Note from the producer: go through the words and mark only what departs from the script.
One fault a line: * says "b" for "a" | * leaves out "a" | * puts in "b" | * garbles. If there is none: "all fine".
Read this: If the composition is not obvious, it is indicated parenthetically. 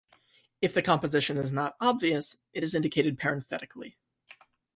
all fine